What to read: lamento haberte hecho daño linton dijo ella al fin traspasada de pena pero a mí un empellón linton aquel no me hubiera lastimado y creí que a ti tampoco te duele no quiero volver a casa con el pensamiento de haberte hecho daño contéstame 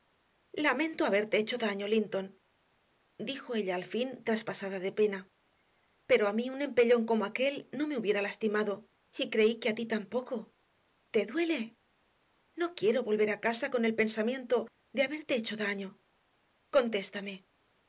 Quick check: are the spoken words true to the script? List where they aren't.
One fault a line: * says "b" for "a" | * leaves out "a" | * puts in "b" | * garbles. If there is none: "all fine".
* says "como" for "linton"